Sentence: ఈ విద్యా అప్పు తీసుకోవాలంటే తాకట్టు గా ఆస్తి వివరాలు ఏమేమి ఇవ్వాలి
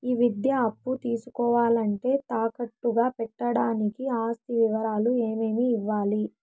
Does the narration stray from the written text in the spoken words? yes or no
yes